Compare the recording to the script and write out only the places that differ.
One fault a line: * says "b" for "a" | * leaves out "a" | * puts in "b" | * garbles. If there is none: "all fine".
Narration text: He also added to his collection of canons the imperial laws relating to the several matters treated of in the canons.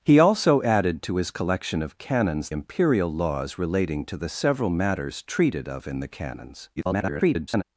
* leaves out "the"
* garbles